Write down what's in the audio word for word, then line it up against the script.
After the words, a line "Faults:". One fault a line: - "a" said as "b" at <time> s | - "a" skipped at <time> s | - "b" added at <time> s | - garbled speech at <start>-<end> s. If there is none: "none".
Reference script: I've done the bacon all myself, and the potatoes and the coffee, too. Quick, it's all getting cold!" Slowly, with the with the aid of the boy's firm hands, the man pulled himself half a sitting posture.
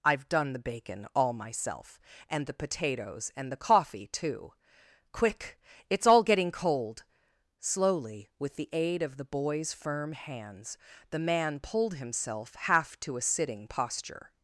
I've done the bacon all myself, and the potatoes and the coffee, too. Quick, it's all getting cold!" Slowly, with the aid of the boy's firm hands, the man pulled himself half to a sitting posture.
Faults:
- "with the" skipped at 8.7 s
- "to" added at 13.0 s